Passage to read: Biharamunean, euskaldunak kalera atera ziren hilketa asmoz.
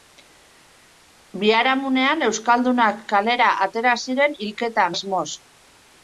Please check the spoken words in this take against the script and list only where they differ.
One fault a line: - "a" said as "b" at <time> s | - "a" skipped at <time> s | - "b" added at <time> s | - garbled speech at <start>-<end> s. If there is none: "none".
none